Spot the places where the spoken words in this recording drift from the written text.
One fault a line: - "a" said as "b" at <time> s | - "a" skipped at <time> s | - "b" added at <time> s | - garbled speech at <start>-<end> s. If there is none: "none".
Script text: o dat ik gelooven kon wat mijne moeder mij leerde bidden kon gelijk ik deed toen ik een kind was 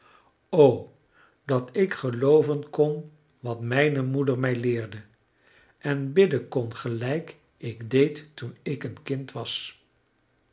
- "en" added at 5.8 s